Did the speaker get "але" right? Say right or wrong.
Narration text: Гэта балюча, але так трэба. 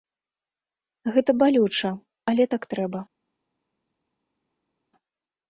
right